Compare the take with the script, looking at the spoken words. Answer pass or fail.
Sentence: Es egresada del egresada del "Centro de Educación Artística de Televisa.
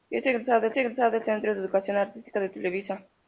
pass